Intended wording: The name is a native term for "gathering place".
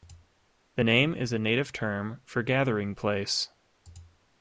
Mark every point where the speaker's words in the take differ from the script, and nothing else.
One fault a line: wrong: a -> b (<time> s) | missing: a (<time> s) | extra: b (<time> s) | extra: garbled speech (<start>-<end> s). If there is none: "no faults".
no faults